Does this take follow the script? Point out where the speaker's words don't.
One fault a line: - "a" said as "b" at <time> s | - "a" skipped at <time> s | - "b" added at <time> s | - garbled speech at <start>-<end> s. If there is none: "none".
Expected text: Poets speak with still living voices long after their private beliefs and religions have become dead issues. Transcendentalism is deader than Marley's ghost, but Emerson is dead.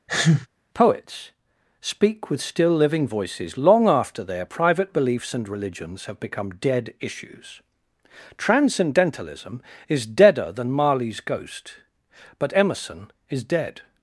none